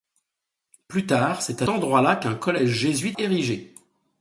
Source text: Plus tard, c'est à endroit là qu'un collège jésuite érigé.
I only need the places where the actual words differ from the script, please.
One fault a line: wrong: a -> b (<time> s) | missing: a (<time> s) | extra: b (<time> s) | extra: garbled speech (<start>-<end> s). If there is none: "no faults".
no faults